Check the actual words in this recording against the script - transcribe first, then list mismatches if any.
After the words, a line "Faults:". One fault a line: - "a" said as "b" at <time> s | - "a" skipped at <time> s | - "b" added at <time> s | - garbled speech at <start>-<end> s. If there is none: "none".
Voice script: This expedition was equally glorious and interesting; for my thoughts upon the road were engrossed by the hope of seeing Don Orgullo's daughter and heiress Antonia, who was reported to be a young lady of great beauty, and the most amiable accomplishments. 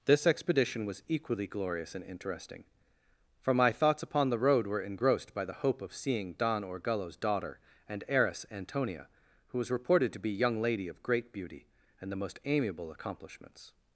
This expedition was equally glorious and interesting; for my thoughts upon the road were engrossed by the hope of seeing Don Orgullo's daughter and heiress Antonia, who was reported to be young lady of great beauty, and the most amiable accomplishments.
Faults:
- "a" skipped at 10.3 s